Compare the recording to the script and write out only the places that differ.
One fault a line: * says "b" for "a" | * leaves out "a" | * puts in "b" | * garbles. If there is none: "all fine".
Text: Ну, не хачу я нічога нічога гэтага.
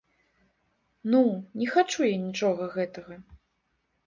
* leaves out "нічога"